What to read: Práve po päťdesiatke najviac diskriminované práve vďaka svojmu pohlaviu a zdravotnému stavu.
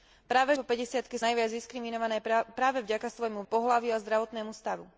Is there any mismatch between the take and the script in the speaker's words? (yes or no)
no